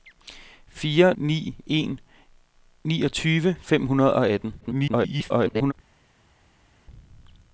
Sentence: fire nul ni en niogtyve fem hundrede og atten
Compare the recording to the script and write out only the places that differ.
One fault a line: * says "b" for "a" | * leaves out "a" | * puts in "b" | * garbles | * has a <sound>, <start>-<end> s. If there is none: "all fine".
* leaves out "nul"
* garbles